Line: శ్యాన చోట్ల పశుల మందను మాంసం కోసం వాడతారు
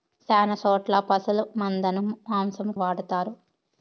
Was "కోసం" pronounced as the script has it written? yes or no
no